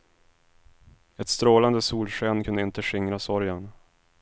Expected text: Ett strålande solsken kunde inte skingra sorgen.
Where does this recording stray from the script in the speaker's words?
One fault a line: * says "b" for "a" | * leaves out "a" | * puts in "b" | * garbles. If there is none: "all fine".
all fine